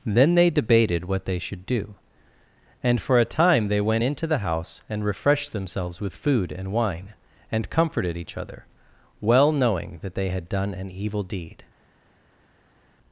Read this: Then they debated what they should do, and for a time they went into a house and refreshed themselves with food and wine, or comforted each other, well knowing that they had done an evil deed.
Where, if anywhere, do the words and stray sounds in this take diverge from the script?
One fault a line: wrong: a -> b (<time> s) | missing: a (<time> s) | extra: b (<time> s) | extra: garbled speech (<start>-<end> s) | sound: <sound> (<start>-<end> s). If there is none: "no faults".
wrong: a -> the (4.3 s)
wrong: or -> and (7.5 s)